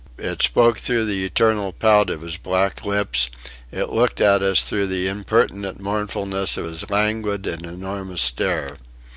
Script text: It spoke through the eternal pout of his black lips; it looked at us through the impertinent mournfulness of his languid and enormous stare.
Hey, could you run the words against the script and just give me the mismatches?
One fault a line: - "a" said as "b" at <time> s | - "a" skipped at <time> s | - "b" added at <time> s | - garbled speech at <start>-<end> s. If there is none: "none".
none